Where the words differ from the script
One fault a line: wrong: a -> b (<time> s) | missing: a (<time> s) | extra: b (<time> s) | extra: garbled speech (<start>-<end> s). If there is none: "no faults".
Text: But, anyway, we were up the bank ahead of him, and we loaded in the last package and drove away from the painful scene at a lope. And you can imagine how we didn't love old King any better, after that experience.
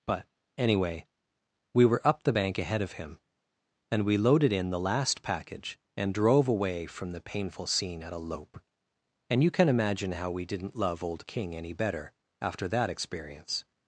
no faults